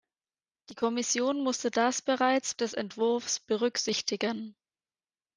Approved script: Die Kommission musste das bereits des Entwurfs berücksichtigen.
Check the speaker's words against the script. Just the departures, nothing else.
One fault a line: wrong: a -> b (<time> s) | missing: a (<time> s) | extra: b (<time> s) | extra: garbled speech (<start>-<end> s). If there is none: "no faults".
no faults